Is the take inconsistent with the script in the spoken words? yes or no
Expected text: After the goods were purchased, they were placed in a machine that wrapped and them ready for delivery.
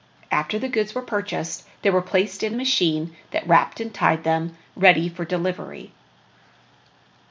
yes